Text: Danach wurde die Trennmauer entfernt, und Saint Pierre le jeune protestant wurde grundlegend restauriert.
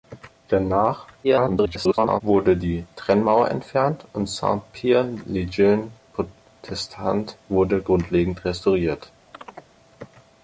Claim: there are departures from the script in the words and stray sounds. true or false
true